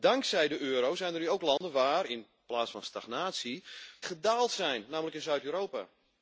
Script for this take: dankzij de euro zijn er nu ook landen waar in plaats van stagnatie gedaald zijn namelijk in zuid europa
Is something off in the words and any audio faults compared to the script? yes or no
yes